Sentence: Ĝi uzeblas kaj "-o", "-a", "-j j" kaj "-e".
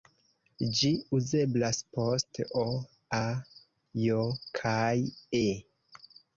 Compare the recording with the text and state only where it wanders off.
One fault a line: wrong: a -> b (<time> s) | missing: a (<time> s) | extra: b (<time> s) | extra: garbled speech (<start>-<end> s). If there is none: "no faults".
wrong: kaj -> post (2.0 s)
missing: j (4.2 s)